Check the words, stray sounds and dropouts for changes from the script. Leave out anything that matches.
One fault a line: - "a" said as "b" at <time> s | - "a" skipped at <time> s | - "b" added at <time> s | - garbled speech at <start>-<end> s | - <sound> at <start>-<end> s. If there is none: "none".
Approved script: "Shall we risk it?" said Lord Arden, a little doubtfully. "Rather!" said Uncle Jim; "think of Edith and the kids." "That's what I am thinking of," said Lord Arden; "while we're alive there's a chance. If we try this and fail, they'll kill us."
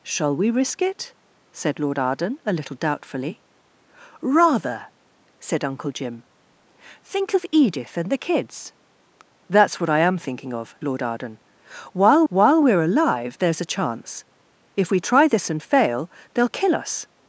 - "said" skipped at 10.8 s
- "while" added at 12.3 s